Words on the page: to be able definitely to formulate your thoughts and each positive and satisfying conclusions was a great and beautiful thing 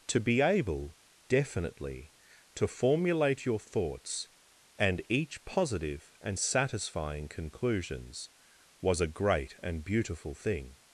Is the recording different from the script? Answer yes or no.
no